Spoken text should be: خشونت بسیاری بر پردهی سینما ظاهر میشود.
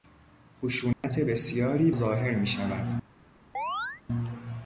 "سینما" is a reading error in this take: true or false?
true